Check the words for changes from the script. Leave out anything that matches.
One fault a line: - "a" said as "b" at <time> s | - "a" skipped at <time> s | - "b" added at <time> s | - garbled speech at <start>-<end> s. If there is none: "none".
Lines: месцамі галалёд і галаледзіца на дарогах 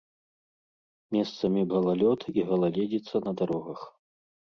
none